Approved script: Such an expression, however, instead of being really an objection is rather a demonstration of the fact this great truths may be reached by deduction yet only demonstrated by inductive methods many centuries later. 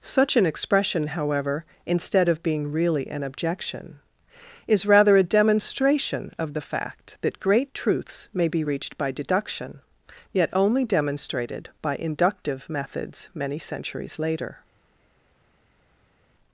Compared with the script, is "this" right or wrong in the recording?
wrong